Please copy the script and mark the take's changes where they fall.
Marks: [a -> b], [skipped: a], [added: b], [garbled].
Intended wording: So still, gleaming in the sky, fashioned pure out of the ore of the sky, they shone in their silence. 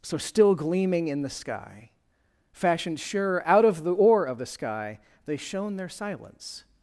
So still, gleaming in the sky, fashioned [pure -> sure] out of the ore of the sky, they shone [skipped: in] their silence.